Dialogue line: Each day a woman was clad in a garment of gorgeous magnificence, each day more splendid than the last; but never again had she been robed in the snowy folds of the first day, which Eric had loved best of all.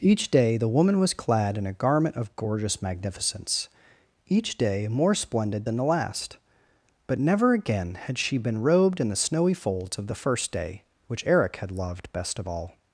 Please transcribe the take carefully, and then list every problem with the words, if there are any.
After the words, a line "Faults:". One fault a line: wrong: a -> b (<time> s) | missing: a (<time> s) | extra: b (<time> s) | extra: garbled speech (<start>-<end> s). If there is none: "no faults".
Each day the woman was clad in a garment of gorgeous magnificence, each day more splendid than the last; but never again had she been robed in the snowy folds of the first day, which Eric had loved best of all.
Faults:
wrong: a -> the (0.6 s)